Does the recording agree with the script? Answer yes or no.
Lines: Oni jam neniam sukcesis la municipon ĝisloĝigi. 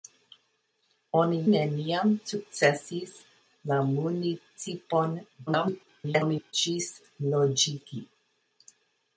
no